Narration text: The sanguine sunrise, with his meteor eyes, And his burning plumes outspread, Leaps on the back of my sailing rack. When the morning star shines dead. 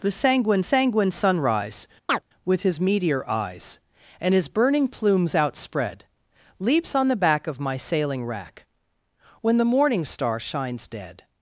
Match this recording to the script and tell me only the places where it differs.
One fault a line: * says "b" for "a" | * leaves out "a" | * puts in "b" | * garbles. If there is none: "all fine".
* puts in "sanguine"